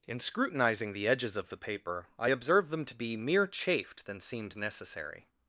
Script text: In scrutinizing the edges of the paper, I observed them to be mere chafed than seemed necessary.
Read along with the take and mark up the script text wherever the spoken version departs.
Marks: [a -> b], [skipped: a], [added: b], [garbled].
In scrutinizing the edges of the paper, I observed them to be mere chafed than seemed necessary.